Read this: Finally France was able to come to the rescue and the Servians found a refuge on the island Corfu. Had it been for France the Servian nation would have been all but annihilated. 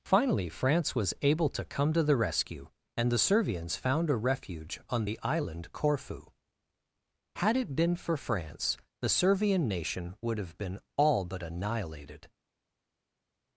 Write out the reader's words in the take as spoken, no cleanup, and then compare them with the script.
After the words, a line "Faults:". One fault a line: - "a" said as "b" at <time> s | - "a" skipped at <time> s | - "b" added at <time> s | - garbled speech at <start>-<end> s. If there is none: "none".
Finally France was able to come to the rescue and the Servians found a refuge on the island Corfu. Had it been for France the Servian nation would have been all but annihilated.
Faults:
none